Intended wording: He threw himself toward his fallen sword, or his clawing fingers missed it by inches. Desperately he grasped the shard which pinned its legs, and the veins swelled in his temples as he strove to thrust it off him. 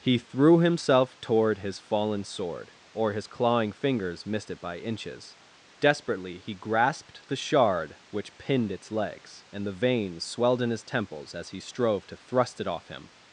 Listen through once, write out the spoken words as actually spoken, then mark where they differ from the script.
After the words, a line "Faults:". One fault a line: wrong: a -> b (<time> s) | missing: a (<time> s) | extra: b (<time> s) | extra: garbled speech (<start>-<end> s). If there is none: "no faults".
He threw himself toward his fallen sword, or his clawing fingers missed it by inches. Desperately he grasped the shard which pinned its legs, and the veins swelled in his temples as he strove to thrust it off him.
Faults:
no faults